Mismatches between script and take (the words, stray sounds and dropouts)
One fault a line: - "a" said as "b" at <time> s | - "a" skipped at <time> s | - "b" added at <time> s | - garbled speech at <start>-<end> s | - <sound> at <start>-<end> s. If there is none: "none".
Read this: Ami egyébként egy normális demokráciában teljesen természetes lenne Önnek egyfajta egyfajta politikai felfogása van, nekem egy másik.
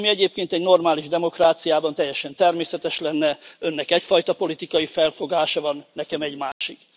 - "egyfajta" skipped at 4.3 s
- dropout at 6.5-6.6 s